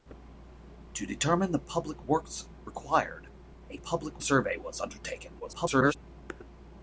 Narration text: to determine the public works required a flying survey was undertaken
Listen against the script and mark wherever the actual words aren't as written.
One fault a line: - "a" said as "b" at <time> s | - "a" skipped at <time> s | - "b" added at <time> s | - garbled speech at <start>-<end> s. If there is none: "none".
- "flying" said as "public" at 3.8 s
- garbled speech at 5.4-6.0 s